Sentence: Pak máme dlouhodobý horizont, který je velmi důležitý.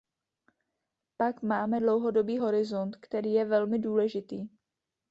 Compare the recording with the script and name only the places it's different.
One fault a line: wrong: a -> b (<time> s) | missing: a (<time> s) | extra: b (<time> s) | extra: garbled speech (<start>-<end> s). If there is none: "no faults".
no faults